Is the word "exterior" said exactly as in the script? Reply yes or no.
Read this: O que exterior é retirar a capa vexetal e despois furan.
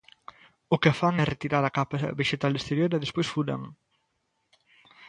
no